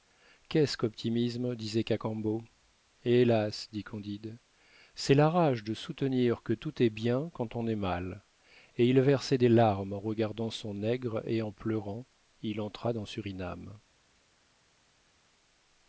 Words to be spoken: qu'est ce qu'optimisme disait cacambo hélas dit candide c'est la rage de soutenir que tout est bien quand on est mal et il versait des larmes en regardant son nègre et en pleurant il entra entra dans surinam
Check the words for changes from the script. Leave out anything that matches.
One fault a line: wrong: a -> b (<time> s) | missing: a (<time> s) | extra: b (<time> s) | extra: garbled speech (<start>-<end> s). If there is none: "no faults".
missing: entra (12.9 s)